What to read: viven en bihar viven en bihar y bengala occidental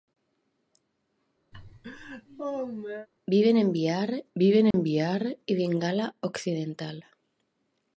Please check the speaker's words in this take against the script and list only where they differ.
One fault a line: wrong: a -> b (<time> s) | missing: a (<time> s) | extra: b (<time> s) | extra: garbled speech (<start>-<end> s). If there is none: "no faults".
no faults